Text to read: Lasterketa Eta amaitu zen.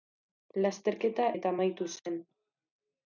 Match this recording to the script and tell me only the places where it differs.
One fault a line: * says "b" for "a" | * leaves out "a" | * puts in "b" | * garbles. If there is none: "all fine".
all fine